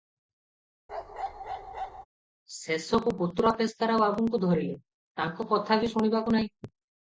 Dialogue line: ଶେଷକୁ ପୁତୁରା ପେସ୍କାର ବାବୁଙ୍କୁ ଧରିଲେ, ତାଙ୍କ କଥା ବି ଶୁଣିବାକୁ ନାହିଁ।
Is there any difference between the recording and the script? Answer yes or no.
no